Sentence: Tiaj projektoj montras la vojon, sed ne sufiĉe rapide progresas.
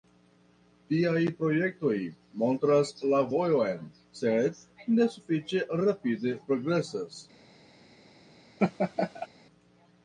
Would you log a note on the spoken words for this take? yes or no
no